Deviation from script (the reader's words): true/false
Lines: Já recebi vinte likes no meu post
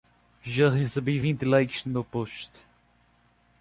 false